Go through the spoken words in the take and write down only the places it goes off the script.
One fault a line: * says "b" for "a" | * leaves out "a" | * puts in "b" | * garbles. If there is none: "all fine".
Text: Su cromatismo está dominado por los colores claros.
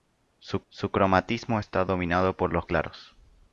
* puts in "su"
* leaves out "colores"